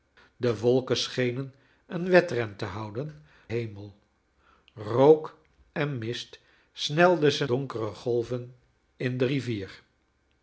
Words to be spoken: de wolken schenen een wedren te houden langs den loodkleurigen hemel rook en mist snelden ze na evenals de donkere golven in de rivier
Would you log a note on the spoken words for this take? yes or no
yes